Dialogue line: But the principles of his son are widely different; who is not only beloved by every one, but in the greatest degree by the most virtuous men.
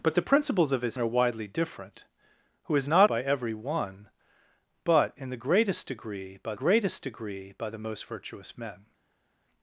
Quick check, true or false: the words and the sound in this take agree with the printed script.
false